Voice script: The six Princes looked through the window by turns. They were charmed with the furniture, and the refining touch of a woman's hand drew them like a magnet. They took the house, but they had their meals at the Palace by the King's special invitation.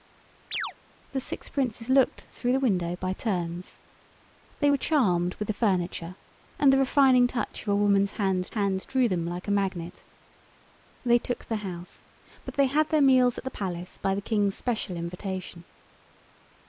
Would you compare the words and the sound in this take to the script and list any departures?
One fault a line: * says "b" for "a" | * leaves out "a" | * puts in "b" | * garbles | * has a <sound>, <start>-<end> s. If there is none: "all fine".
* has a chirp, 0.5-0.7 s
* puts in "hand"